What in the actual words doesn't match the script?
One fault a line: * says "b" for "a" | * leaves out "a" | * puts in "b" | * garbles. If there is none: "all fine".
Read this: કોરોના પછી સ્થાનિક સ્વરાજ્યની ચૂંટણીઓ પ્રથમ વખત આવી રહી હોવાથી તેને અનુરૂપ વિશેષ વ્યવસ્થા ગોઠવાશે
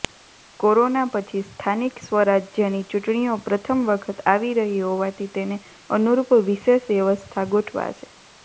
all fine